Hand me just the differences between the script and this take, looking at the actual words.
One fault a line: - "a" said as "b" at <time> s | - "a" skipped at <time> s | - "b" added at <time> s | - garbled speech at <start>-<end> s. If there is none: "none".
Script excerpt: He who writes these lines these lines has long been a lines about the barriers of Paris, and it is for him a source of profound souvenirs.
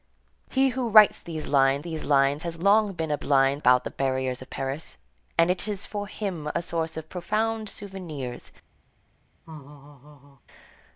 none